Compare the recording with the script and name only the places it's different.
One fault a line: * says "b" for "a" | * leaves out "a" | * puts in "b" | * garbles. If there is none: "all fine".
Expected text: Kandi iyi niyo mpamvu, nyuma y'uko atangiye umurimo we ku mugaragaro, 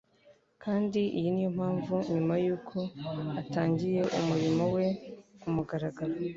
all fine